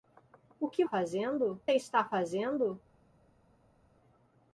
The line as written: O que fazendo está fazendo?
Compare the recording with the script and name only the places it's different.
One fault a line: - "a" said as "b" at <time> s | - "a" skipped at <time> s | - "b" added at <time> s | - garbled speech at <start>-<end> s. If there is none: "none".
none